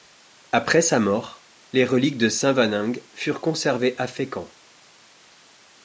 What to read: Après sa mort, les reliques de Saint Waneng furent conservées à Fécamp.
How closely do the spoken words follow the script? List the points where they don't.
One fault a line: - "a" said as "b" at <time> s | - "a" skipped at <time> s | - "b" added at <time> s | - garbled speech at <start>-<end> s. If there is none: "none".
none